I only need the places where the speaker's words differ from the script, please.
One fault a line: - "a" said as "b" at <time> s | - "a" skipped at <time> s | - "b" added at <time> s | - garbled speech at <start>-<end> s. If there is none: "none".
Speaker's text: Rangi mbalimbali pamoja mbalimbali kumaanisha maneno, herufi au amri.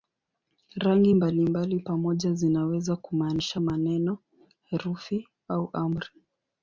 - "mbalimbali" said as "zinaweza" at 2.3 s